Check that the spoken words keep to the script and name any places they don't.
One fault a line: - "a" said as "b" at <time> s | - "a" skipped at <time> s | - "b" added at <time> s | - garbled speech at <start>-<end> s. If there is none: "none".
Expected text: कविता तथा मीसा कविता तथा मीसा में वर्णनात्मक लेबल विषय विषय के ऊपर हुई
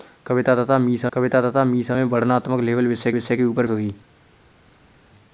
none